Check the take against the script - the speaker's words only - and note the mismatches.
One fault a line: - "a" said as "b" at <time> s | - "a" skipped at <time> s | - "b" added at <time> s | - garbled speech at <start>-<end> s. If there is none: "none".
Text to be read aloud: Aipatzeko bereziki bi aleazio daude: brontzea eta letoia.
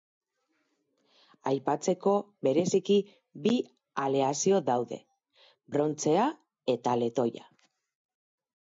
none